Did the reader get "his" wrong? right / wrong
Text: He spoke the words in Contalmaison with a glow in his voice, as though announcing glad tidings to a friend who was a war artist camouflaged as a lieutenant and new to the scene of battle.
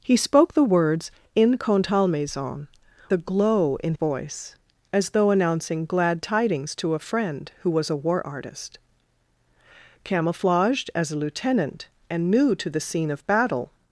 wrong